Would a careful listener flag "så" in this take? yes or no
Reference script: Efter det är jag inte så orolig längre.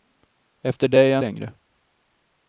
yes